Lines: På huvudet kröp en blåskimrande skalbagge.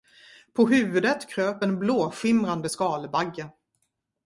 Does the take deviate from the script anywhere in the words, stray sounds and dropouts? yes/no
no